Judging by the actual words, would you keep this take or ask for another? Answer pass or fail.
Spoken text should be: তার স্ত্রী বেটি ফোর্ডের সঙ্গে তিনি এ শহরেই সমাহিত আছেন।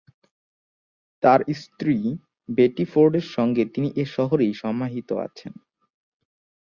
pass